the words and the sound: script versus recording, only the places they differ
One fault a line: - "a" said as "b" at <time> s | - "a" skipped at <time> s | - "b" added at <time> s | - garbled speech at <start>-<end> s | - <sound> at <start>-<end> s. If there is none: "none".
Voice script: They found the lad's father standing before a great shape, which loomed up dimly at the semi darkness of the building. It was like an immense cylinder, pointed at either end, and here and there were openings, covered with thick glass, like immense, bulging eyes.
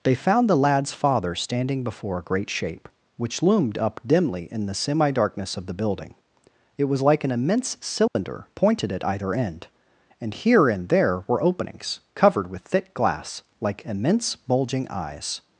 - "at" said as "in" at 4.5 s
- dropout at 8.1-8.2 s